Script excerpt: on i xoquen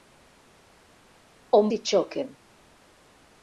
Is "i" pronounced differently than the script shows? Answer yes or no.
no